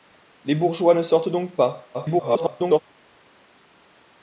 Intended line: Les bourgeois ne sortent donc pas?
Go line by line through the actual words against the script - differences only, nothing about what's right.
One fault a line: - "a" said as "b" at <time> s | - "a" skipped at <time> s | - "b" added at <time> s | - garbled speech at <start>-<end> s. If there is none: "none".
- garbled speech at 1.9-2.8 s